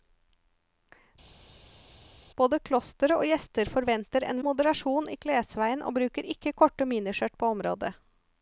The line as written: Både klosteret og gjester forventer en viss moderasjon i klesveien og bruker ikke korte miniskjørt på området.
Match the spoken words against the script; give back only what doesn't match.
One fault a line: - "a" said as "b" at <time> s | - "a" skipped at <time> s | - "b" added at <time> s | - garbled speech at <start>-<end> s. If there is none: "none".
- "viss" skipped at 4.4 s